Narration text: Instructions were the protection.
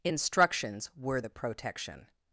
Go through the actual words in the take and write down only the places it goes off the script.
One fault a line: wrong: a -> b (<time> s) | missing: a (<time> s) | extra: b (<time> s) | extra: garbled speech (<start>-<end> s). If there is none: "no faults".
no faults